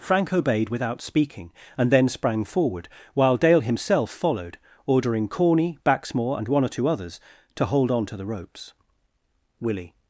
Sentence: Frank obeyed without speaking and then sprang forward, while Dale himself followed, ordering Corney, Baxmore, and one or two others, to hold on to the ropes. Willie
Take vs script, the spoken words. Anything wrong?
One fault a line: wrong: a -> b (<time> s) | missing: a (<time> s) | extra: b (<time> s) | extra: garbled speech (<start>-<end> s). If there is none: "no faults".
no faults